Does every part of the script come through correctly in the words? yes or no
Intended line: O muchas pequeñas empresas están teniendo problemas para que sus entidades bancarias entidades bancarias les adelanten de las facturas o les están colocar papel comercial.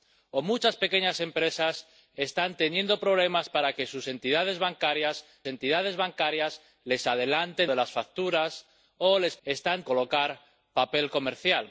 yes